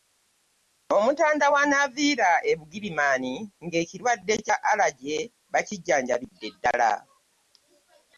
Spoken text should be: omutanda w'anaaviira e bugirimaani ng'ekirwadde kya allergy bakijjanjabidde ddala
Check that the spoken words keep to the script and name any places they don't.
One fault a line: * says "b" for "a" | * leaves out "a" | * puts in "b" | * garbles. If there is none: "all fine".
all fine